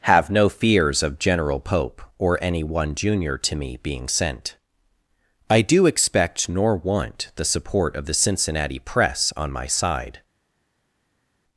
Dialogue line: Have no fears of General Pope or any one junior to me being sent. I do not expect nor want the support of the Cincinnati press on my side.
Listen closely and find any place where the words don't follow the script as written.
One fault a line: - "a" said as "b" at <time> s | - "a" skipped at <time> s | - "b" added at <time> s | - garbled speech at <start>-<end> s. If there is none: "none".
- "not" skipped at 5.8 s